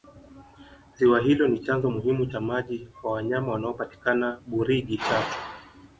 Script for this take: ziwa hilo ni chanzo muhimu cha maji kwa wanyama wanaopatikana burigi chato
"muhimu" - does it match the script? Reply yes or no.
yes